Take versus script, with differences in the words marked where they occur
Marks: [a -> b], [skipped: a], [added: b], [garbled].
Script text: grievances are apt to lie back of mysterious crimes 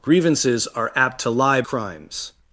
grievances are apt to lie [skipped: back of mysterious] crimes